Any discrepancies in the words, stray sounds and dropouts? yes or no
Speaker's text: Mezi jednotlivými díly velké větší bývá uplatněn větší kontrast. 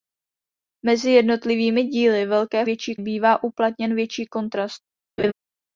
yes